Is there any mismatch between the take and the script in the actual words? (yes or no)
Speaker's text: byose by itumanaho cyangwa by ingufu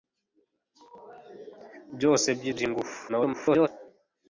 yes